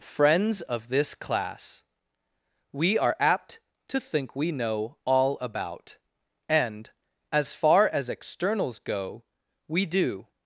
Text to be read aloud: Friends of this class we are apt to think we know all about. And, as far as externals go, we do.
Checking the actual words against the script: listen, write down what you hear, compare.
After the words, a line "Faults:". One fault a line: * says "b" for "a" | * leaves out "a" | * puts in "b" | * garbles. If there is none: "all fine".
Friends of this class we are apt to think we know all about. And, as far as externals go, we do.
Faults:
all fine